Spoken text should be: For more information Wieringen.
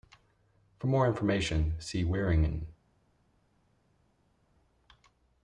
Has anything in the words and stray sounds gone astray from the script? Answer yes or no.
yes